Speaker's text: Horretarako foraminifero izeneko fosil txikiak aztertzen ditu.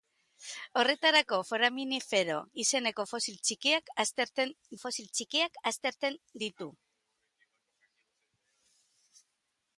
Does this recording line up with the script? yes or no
no